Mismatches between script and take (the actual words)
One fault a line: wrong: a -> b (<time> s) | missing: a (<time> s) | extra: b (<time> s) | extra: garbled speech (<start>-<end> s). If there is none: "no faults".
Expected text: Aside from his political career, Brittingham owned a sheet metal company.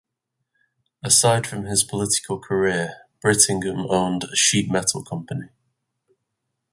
no faults